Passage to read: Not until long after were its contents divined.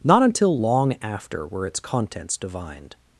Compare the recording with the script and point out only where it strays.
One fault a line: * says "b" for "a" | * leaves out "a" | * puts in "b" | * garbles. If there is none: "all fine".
all fine